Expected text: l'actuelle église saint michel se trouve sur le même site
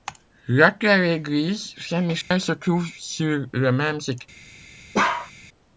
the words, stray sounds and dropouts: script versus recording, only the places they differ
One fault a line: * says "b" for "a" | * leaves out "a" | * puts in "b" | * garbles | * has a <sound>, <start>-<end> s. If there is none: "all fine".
* has a dropout, 2.2-2.3 s
* has a bark, 4.9-5.3 s